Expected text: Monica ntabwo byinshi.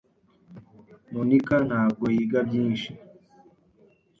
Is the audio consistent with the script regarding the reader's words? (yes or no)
no